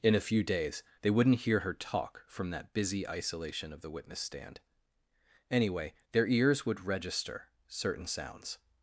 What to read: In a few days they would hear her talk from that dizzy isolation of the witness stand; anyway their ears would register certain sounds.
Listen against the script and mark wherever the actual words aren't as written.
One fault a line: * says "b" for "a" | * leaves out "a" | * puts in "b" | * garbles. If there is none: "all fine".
* says "wouldn't" for "would"
* says "busy" for "dizzy"